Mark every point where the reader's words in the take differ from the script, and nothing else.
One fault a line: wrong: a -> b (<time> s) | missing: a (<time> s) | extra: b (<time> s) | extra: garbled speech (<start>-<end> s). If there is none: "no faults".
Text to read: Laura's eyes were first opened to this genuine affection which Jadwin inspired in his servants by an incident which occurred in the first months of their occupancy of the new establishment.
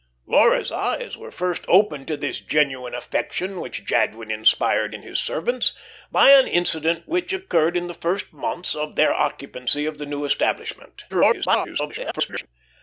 extra: garbled speech (11.1-12.5 s)